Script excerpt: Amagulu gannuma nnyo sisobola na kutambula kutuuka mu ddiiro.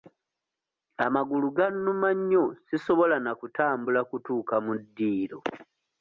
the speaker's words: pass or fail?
pass